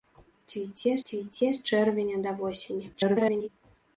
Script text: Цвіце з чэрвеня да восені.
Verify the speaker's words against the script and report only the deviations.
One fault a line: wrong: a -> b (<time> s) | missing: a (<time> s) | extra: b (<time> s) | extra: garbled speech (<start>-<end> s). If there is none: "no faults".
extra: цвіце (1.1 s)
extra: garbled speech (2.9-3.5 s)